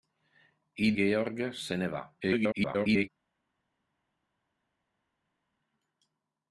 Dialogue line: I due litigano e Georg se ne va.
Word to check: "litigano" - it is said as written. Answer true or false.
false